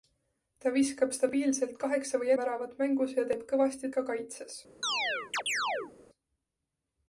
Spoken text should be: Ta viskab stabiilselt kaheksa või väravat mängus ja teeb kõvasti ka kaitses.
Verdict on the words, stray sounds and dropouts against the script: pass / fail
fail